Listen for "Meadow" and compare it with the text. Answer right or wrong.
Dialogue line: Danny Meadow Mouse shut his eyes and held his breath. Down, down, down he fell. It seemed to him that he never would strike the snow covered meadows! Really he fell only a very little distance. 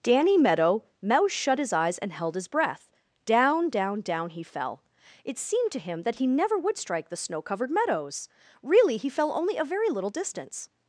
right